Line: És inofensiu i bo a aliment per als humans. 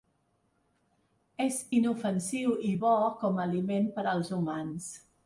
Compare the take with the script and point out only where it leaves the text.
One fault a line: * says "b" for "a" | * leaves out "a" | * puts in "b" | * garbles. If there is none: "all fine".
* puts in "com"